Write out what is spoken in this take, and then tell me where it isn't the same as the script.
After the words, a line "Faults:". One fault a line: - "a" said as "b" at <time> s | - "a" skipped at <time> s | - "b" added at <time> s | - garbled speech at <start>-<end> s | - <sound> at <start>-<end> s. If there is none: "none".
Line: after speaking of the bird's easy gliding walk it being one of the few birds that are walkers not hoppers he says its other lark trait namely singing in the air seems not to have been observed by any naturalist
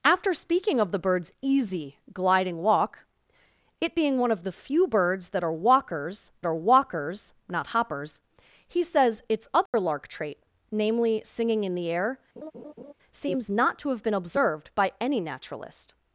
after speaking of the bird's easy gliding walk it being one of the few birds that are walkers are walkers not hoppers he says its other lark trait namely singing in the air seems not to have been observed by any naturalist
Faults:
- "are walkers" added at 6.5 s
- dropout at 9.7-9.7 s
- laugh at 12.4-12.9 s